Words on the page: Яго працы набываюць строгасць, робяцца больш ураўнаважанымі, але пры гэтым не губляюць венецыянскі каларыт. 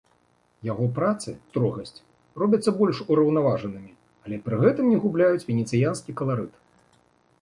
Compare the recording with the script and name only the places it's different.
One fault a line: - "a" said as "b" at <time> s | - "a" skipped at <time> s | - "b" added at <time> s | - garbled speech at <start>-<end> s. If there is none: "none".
- "набываюць" skipped at 1.3 s